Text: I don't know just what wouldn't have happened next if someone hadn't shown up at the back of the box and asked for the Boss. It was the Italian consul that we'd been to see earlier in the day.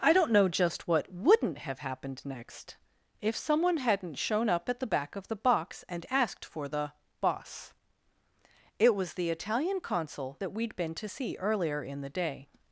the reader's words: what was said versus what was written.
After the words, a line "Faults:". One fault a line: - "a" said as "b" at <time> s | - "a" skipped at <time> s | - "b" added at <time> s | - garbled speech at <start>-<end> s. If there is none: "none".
I don't know just what wouldn't have happened next if someone hadn't shown up at the back of the box and asked for the Boss. It was the Italian consul that we'd been to see earlier in the day.
Faults:
none